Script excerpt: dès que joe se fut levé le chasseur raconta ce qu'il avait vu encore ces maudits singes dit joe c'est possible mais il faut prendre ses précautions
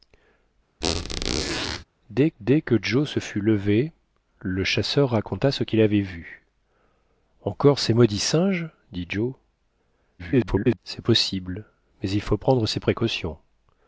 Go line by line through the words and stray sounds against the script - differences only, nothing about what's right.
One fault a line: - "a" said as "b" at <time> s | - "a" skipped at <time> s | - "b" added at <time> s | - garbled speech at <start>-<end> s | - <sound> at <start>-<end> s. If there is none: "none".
- squeak at 0.8-1.8 s
- "dès" added at 2.4 s
- garbled speech at 10.2-10.8 s